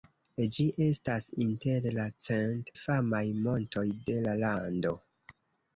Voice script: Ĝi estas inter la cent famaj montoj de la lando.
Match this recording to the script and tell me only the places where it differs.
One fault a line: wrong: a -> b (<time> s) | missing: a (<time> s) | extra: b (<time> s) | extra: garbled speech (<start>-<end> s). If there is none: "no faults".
no faults